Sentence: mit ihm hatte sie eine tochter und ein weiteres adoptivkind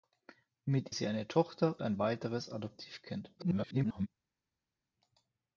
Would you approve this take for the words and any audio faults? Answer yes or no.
no